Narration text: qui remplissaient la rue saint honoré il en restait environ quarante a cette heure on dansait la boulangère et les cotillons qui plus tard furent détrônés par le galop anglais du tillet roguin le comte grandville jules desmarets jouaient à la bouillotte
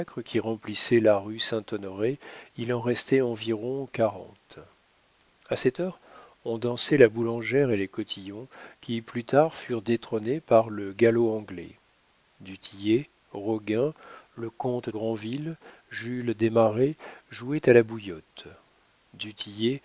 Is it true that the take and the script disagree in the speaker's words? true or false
false